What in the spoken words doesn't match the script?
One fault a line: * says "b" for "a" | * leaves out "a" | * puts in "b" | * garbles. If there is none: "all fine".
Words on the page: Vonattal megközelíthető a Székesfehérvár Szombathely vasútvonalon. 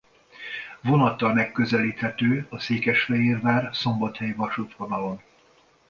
all fine